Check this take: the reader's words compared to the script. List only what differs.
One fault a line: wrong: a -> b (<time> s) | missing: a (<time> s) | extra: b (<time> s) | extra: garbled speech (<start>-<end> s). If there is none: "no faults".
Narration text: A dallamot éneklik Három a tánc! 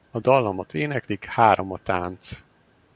no faults